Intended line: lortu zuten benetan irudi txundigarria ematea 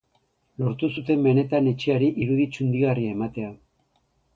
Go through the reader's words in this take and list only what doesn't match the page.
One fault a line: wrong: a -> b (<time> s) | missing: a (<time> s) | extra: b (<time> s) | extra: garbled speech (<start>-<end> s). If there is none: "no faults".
extra: etxeari (1.7 s)